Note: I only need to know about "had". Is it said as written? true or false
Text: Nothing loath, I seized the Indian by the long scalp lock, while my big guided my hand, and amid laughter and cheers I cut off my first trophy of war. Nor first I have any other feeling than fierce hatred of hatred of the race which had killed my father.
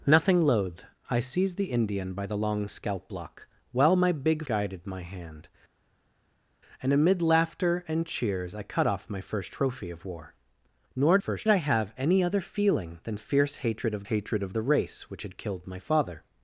true